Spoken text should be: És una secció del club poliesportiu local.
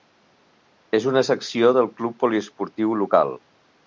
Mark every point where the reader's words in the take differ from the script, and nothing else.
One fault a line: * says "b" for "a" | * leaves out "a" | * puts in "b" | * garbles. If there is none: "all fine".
all fine